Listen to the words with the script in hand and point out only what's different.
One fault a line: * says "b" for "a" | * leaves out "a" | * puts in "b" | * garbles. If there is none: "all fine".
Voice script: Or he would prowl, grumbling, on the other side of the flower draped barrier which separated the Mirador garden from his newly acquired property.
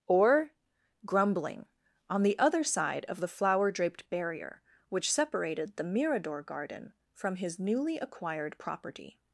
* leaves out "he would prowl"